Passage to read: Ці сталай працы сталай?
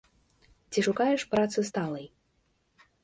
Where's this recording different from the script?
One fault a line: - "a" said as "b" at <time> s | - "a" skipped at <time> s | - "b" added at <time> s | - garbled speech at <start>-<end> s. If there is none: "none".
- "сталай" said as "шукаеш" at 0.8 s